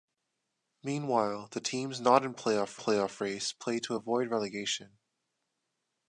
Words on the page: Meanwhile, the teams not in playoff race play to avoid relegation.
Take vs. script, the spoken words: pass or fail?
fail